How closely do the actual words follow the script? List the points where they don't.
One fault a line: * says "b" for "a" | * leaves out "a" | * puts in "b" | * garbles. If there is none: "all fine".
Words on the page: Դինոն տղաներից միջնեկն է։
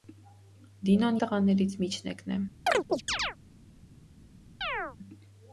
all fine